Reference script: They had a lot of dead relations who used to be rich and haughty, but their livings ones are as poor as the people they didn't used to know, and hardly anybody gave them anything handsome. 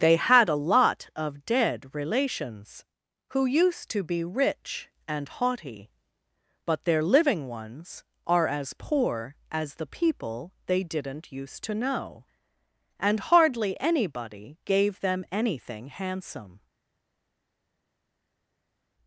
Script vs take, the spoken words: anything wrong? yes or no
yes